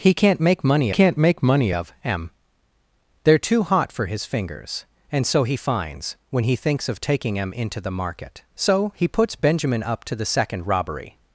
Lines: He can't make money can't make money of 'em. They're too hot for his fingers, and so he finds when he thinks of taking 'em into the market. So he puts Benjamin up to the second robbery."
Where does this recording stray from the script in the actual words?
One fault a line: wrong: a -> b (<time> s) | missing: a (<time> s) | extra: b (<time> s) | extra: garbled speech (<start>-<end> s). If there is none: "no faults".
no faults